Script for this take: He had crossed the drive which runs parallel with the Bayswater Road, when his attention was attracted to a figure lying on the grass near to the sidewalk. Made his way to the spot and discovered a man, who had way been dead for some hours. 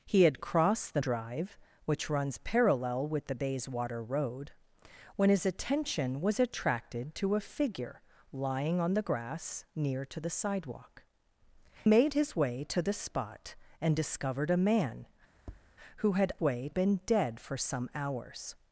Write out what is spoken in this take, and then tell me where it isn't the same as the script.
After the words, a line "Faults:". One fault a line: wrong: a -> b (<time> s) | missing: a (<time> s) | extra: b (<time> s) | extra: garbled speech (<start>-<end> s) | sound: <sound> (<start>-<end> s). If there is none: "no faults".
He had crossed the drive which runs parallel with the Bayswater Road, when his attention was attracted to a figure lying on the grass near to the sidewalk. Made his way to the spot and discovered a man, who had way been dead for some hours.
Faults:
sound: tap (15.4-15.7 s)